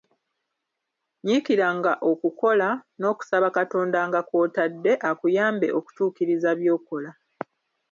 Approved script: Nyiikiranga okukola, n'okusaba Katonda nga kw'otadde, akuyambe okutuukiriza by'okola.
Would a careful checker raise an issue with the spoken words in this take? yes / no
no